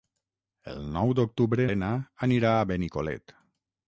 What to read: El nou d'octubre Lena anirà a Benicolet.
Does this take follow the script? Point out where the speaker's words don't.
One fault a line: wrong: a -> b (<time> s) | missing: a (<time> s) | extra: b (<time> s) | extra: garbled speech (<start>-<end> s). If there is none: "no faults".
no faults